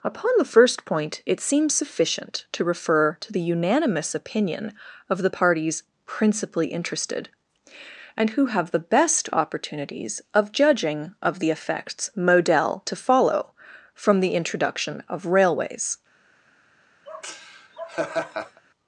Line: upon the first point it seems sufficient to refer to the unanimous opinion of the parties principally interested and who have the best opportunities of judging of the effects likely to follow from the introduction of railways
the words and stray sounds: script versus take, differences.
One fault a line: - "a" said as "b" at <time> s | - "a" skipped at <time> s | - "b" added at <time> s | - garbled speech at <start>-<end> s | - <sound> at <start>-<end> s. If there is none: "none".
- "likely" said as "model" at 12.1 s
- laugh at 17.1-18.6 s